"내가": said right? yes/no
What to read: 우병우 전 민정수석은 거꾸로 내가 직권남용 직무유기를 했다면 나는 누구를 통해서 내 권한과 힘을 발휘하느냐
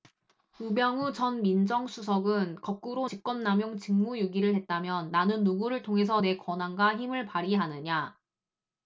no